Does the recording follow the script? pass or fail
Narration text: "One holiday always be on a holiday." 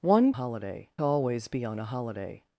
pass